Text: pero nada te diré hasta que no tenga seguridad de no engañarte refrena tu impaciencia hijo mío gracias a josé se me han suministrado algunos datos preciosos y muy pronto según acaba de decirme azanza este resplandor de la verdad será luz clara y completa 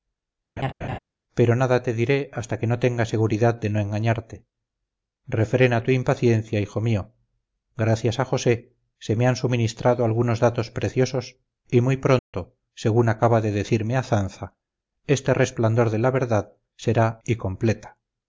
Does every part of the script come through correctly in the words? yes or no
no